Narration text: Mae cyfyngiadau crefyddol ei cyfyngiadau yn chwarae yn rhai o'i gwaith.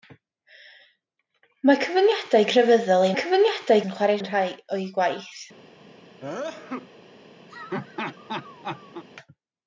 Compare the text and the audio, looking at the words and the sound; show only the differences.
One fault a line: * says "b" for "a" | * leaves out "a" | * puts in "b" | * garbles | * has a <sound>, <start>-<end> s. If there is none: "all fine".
* has a sneeze, 6.2-6.9 s
* has a laugh, 7.5-9.0 s